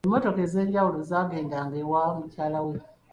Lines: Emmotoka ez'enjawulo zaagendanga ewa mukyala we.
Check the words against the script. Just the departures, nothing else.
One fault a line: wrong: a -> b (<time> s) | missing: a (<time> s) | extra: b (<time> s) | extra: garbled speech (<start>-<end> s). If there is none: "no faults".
no faults